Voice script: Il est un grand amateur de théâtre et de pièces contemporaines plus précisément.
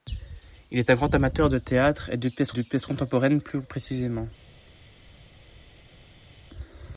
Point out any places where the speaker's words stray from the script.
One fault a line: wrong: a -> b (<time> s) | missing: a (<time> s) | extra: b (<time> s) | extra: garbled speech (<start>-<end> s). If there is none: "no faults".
extra: de pièces (2.5 s)